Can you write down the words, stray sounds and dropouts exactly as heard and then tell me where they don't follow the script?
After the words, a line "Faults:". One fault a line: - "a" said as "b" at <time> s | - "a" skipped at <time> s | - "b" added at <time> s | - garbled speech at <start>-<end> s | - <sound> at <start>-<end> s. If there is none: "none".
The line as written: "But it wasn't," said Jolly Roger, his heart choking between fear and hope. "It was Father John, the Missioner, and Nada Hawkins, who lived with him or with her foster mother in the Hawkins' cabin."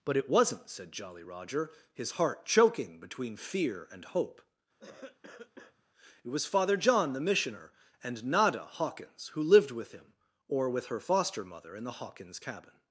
"But it wasn't," said Jolly Roger, his heart choking between fear and hope. "It was Father John, the Missioner, and Nada Hawkins, who lived with him or with her foster mother in the Hawkins' cabin."
Faults:
- cough at 4.8-5.8 s